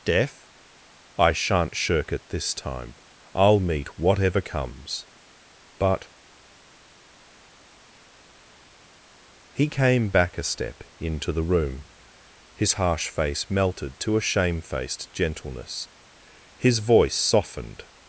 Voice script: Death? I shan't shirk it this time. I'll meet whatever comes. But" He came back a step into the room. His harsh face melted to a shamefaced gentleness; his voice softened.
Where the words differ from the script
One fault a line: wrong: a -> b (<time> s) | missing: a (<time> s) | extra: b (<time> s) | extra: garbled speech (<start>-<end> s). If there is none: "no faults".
no faults